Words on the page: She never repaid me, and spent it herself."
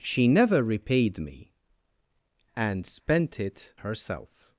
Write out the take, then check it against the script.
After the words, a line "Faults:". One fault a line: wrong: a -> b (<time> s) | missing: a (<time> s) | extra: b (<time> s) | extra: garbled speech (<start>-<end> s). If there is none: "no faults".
She never repaid me, and spent it herself."
Faults:
no faults